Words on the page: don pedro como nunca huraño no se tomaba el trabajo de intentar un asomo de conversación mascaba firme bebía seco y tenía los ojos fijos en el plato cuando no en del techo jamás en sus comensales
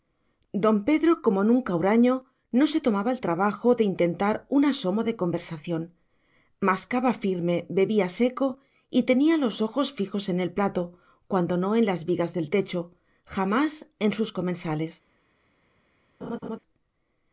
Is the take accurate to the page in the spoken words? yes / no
no